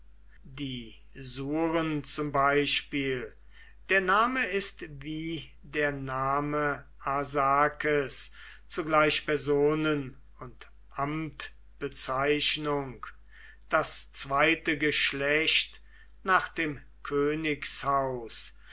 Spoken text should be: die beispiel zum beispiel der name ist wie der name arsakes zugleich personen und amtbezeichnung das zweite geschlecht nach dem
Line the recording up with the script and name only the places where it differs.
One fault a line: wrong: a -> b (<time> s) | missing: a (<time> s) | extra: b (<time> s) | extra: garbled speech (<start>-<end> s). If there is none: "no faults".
wrong: beispiel -> surn (1.1 s)